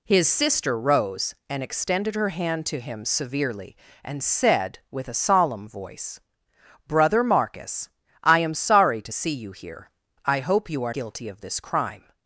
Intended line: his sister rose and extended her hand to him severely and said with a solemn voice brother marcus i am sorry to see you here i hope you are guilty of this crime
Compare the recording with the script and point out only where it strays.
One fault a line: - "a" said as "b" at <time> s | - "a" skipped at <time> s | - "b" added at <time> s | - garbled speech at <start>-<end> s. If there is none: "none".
none